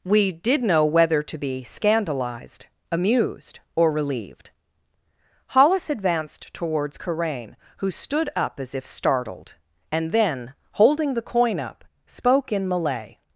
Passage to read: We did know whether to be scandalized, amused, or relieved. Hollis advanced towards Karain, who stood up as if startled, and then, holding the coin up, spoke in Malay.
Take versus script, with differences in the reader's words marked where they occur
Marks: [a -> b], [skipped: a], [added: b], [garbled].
We did know whether to be scandalized, amused, or relieved. Hollis advanced towards Karain, who stood up as if startled, and then, holding the coin up, spoke in Malay.